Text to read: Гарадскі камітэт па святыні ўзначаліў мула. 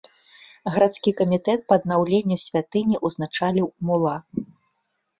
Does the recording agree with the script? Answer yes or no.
no